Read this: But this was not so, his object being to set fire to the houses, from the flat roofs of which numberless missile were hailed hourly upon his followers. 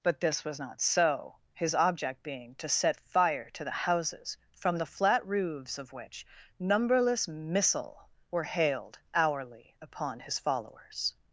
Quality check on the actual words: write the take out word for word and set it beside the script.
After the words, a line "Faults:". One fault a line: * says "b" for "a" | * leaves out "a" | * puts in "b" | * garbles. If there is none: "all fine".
But this was not so, his object being to set fire to the houses, from the flat roofs of which numberless missile were hailed hourly upon his followers.
Faults:
all fine